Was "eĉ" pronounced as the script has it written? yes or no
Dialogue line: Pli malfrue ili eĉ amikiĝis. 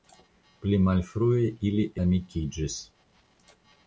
no